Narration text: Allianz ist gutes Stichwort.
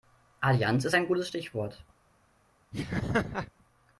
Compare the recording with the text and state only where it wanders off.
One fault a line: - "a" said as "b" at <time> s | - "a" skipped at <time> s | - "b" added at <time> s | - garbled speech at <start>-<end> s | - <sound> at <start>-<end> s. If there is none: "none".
- "ein" added at 0.9 s
- laugh at 2.7-3.5 s